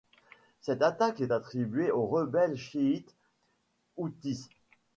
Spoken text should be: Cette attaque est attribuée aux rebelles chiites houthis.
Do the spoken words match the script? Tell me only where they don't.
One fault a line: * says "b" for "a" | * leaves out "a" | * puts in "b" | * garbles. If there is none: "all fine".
all fine